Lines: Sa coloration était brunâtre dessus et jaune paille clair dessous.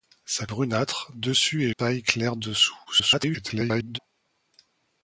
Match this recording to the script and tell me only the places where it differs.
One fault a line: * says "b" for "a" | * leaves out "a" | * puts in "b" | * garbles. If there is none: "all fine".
* leaves out "coloration était"
* leaves out "jaune"
* garbles